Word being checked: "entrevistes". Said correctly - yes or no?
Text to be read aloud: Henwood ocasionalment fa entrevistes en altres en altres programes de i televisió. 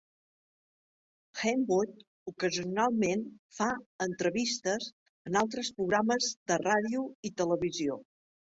yes